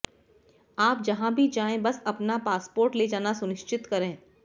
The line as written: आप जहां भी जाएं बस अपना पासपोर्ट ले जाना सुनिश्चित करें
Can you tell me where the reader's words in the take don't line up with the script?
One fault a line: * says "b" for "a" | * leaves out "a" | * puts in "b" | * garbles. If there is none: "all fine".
all fine